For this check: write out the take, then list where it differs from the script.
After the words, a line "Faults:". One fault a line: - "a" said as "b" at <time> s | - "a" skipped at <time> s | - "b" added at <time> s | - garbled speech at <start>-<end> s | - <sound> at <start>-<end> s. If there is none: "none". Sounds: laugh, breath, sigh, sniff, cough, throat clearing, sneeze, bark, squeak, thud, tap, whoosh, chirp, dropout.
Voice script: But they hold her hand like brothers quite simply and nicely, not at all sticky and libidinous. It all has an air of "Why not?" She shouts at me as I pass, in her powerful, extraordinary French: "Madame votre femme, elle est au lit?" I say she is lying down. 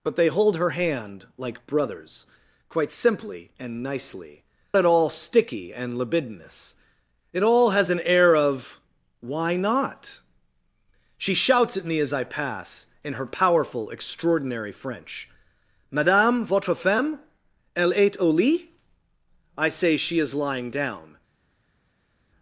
But they hold her hand like brothers quite simply and nicely, at all sticky and libidinous. It all has an air of "Why not?" She shouts at me as I pass, in her powerful, extraordinary French: "Madame votre femme, elle est au lit?" I say she is lying down.
Faults:
- "not" skipped at 4.4 s